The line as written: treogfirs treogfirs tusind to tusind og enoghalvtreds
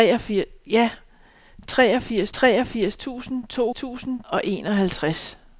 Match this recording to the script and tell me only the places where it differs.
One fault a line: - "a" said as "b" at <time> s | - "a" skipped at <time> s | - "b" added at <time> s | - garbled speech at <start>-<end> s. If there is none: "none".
none